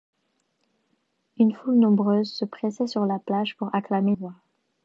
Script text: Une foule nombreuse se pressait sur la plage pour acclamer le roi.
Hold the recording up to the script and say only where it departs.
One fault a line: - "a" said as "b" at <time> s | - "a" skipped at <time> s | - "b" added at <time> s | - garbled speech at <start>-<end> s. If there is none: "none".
- "le" skipped at 4.1 s